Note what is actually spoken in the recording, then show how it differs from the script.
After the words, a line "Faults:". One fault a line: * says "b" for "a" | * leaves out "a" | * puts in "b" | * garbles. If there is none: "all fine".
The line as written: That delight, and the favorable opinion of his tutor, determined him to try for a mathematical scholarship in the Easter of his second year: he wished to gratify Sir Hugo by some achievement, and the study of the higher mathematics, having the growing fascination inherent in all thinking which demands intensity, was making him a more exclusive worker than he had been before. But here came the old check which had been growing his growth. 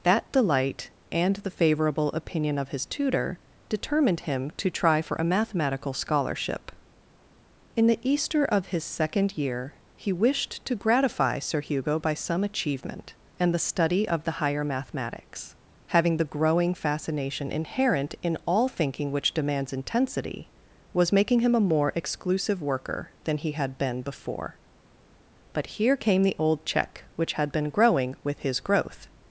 That delight, and the favorable opinion of his tutor, determined him to try for a mathematical scholarship in the Easter of his second year: he wished to gratify Sir Hugo by some achievement, and the study of the higher mathematics, having the growing fascination inherent in all thinking which demands intensity, was making him a more exclusive worker than he had been before. But here came the old check which had been growing with his growth.
Faults:
* puts in "with"